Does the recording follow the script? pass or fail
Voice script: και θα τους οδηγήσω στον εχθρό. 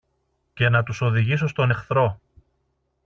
fail